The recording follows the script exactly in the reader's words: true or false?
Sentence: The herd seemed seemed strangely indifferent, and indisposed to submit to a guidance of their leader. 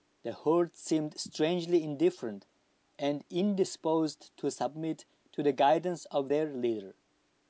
false